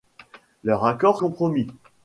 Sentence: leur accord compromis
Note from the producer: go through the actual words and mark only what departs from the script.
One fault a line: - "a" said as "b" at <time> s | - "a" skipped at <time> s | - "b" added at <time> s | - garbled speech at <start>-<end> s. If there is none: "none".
none